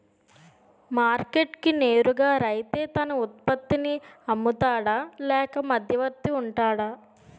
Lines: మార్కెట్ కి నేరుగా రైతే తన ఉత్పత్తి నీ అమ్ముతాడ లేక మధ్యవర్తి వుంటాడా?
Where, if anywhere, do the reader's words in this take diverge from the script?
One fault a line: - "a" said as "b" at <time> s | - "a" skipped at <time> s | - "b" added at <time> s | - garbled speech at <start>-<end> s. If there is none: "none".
none